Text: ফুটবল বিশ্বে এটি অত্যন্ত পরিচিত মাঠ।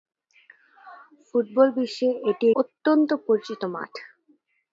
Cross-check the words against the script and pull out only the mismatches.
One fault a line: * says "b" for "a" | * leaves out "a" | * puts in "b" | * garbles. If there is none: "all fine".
all fine